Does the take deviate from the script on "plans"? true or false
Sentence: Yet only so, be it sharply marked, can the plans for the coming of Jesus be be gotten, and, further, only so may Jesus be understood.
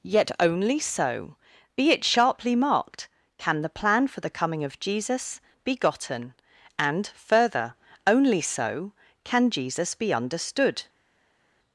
true